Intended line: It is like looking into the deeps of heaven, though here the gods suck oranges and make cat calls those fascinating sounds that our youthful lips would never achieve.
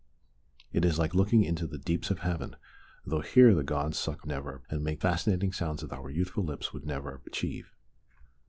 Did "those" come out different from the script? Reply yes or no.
yes